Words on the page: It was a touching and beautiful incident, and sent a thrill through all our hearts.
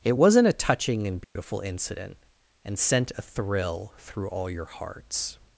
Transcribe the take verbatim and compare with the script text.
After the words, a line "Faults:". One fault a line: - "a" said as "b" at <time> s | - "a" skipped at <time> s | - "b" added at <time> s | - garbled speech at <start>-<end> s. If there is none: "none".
It wasn't a touching and beautiful incident, and sent a thrill through all your hearts.
Faults:
- "was" said as "wasn't" at 0.1 s
- "our" said as "your" at 4.5 s